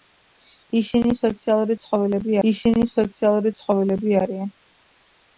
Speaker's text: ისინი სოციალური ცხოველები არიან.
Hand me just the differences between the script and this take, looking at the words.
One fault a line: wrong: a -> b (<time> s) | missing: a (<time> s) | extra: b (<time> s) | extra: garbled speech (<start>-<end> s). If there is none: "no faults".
extra: ისინი სოციალური ცხოველები (2.5 s)